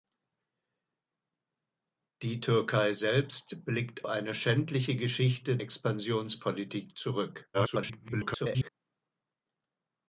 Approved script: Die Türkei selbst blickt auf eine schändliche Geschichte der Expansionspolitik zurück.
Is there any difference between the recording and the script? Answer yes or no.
yes